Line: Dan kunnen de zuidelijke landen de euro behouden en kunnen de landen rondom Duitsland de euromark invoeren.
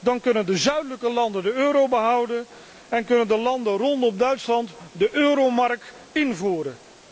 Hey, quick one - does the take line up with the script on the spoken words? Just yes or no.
yes